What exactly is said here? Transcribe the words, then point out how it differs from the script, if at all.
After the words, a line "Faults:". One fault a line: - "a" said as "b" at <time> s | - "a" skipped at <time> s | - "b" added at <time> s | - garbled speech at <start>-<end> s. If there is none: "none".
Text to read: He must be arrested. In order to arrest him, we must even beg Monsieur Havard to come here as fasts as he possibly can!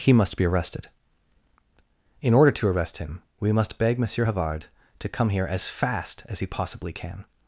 He must be arrested. In order to arrest him, we must beg Monsieur Havard to come here as fast as he possibly can!
Faults:
- "even" skipped at 3.8 s
- "fasts" said as "fast" at 5.7 s